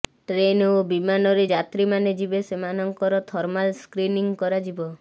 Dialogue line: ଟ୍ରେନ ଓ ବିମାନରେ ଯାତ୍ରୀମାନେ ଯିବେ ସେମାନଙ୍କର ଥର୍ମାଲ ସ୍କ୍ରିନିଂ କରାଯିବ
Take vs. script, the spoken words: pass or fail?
pass